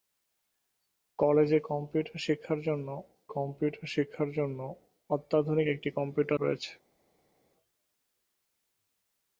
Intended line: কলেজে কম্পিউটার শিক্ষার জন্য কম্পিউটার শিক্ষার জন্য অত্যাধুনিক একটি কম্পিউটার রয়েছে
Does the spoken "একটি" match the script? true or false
true